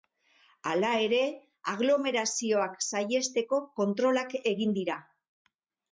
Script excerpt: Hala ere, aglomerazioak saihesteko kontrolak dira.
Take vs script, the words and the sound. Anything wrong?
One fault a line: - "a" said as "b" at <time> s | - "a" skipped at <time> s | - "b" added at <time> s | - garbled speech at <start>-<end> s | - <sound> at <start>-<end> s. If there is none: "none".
- "egin" added at 4.5 s